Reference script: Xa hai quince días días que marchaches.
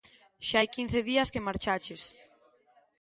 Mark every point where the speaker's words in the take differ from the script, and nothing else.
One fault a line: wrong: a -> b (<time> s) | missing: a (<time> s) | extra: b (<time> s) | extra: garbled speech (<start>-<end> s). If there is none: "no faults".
missing: días (1.3 s)